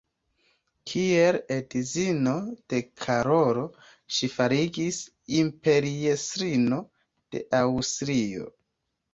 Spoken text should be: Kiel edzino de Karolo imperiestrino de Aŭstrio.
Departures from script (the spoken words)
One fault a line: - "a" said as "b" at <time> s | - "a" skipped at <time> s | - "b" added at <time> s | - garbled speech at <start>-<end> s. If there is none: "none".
- "ŝi fariĝis" added at 4.2 s